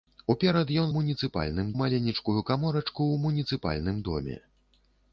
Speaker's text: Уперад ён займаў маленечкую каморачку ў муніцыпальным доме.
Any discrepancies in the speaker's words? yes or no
yes